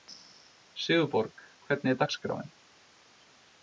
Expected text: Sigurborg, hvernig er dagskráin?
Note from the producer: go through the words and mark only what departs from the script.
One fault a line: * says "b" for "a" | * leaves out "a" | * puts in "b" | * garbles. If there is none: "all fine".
all fine